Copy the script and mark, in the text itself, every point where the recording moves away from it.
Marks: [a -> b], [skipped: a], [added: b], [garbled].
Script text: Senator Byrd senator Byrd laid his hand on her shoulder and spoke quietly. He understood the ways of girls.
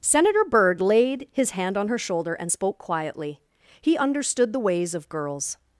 Senator Byrd [skipped: senator Byrd] laid his hand on her shoulder and spoke quietly. He understood the ways of girls.